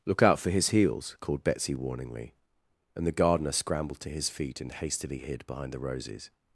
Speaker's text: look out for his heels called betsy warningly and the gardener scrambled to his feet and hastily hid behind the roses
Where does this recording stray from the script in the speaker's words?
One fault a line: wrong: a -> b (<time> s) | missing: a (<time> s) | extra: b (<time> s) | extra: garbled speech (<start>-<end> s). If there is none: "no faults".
no faults